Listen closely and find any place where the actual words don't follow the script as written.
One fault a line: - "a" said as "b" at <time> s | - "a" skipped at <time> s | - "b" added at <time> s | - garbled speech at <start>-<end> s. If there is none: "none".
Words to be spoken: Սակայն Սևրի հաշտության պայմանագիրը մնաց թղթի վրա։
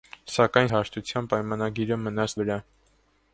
- "Սևրի" skipped at 0.7 s
- "թղթի" skipped at 2.4 s